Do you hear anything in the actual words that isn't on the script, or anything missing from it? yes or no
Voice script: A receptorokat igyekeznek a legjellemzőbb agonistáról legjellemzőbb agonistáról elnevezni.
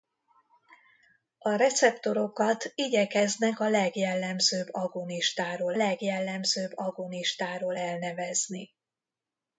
no